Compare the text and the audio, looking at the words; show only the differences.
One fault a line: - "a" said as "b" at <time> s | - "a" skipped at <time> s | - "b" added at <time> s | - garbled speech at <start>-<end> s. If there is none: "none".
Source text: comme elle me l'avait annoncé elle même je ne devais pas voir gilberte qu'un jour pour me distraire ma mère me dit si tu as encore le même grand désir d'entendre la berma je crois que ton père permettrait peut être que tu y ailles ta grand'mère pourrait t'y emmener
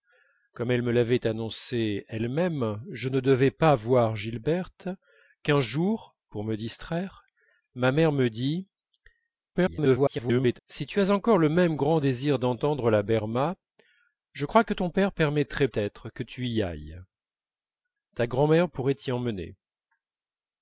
- garbled speech at 9.5-10.6 s
- "peut" skipped at 15.7 s